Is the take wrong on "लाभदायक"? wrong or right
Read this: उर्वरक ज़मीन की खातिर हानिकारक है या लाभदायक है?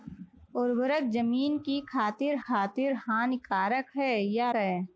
wrong